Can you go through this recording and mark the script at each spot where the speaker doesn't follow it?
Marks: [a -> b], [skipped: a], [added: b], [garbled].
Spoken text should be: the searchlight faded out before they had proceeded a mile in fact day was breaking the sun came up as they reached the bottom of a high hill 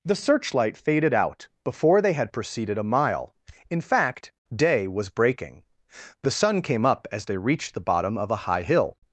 the searchlight faded out before they had proceeded a mile in fact day was breaking the sun came up as they reached the bottom of a high hill